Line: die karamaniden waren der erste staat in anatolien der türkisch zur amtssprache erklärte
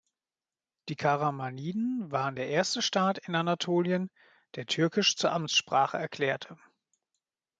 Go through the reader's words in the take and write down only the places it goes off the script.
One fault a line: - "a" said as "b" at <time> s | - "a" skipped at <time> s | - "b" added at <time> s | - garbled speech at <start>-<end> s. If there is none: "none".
none